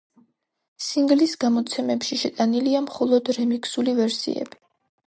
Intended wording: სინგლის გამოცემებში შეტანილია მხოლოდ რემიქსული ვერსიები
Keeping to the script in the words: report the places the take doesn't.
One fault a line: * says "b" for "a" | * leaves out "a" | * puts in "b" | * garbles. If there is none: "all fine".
all fine